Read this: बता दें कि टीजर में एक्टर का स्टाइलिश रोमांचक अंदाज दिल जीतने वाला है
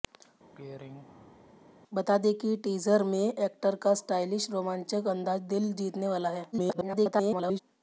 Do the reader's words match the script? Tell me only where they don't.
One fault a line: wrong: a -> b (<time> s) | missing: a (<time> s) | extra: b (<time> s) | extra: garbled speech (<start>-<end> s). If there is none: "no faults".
extra: garbled speech (6.5-7.6 s)